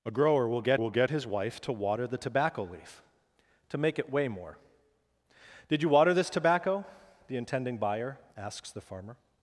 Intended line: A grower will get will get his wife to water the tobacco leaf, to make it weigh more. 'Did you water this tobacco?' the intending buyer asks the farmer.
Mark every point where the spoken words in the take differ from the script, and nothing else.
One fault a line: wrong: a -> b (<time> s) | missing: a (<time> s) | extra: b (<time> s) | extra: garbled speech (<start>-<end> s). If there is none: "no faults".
no faults